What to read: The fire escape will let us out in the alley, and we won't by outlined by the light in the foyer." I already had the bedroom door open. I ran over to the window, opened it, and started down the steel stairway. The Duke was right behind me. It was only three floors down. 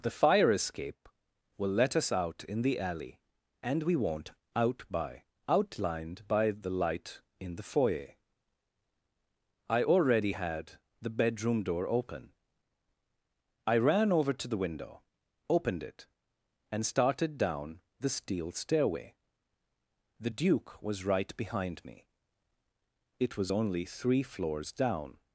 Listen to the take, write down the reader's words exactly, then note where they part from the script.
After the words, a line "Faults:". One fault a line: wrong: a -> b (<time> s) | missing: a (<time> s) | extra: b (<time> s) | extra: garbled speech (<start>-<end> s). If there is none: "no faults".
The fire escape will let us out in the alley, and we won't out by outlined by the light in the foyer." I already had the bedroom door open. I ran over to the window, opened it, and started down the steel stairway. The Duke was right behind me. It was only three floors down.
Faults:
extra: out (4.5 s)